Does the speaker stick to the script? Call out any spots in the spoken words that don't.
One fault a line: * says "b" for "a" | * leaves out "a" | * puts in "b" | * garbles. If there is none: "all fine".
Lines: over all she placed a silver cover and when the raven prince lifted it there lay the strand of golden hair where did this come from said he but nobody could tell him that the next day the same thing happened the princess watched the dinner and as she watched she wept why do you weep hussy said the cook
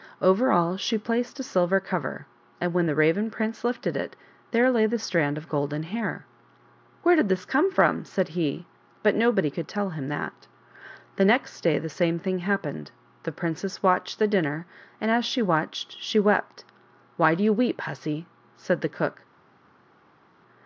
all fine